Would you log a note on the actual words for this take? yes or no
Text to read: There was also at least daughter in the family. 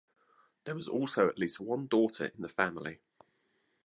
yes